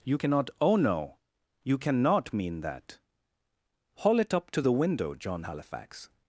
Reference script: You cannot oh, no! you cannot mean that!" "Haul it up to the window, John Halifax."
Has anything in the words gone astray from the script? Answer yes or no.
no